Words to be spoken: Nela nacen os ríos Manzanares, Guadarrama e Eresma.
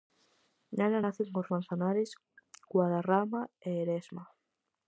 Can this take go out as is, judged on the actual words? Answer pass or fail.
fail